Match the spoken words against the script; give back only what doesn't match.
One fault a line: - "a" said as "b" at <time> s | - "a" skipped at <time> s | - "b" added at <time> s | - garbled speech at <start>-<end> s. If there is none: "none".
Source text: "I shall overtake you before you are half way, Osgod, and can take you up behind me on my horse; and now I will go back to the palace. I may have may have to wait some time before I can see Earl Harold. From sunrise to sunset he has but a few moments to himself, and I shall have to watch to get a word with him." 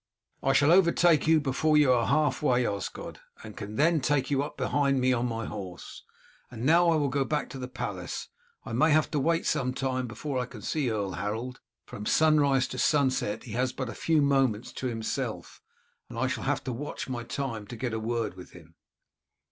- "then" added at 3.8 s
- "may have" skipped at 9.1 s
- "my time" added at 17.1 s